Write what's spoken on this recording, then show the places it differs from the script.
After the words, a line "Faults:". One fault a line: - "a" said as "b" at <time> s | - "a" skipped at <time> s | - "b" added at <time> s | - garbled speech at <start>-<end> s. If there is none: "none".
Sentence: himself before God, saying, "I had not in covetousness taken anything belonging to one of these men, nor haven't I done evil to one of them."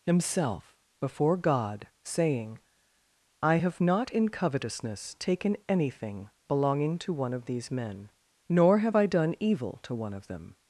himself before God, saying, "I have not in covetousness taken anything belonging to one of these men, nor have I done evil to one of them."
Faults:
- "had" said as "have" at 3.6 s
- "haven't" said as "have" at 8.8 s